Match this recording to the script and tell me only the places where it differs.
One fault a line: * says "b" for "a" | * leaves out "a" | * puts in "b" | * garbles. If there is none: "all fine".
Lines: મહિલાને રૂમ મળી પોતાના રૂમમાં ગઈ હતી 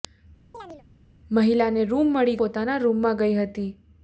all fine